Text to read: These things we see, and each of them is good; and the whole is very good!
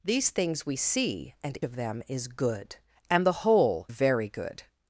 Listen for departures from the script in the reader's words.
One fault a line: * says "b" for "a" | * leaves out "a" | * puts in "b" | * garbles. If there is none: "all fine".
* leaves out "each"
* leaves out "is"